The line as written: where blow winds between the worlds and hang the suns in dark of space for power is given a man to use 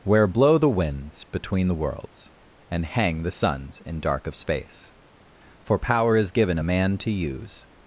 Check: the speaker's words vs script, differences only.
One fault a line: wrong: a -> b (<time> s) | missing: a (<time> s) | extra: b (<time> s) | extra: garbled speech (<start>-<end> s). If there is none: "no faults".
extra: the (0.6 s)